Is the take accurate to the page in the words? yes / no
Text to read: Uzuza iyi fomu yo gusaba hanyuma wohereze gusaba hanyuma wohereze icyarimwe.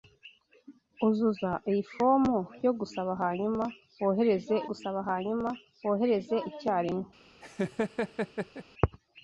yes